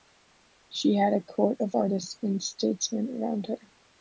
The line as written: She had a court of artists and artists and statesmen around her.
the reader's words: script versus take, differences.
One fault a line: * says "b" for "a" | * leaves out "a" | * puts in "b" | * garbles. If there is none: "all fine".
* leaves out "artists and"